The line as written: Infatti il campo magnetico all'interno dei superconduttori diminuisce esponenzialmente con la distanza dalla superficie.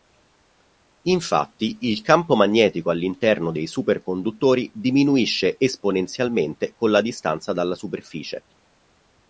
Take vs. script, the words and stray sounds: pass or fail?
pass